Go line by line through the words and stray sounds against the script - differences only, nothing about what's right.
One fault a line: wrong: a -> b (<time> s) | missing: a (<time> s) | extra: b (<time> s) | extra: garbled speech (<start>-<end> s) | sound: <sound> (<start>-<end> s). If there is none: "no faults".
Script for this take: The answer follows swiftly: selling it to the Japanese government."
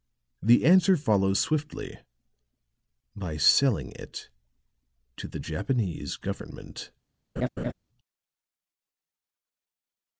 extra: by (3.2 s)
sound: laugh (7.4-7.7 s)